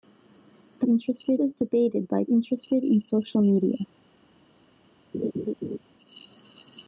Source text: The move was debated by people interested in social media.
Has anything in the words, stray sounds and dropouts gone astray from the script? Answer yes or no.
yes